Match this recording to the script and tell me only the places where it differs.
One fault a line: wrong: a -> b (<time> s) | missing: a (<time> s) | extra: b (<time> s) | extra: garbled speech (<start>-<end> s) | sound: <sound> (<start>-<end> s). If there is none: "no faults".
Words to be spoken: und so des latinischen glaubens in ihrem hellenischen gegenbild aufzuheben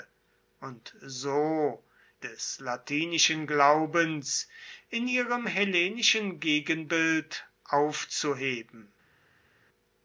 no faults